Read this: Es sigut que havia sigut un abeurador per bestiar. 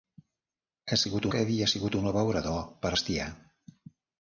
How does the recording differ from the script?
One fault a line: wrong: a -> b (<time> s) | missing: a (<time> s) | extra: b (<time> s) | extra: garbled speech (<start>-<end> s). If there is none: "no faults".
no faults